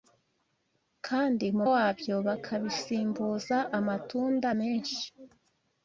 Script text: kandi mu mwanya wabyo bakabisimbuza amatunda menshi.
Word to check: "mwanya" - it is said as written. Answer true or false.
false